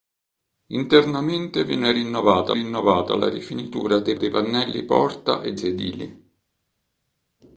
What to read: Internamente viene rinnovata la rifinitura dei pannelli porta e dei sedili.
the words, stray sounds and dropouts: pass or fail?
fail